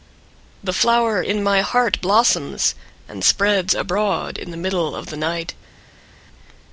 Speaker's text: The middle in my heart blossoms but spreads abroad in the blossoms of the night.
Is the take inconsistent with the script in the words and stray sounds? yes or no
yes